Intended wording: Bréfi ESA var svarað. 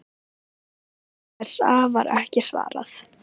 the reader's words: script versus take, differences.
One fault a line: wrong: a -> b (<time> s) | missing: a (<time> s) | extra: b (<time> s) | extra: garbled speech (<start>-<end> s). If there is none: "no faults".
extra: ekki (2.2 s)